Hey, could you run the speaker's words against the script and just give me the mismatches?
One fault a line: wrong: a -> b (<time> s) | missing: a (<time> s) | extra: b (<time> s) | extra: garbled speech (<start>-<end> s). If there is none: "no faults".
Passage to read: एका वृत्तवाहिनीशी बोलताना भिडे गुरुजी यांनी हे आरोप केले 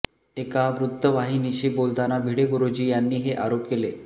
no faults